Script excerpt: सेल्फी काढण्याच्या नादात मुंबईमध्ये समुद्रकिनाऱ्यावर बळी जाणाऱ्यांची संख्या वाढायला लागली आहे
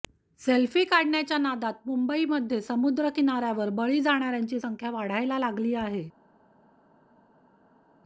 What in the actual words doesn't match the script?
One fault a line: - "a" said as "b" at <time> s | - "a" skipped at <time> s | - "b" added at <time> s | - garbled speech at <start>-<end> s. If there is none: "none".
none